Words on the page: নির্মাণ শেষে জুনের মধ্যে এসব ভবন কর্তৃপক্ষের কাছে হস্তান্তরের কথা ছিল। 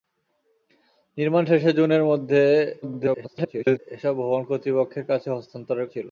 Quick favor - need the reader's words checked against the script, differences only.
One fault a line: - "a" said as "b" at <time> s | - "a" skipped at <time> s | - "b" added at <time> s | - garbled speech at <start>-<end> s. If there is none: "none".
- garbled speech at 2.8-3.8 s
- "কথা" skipped at 5.9 s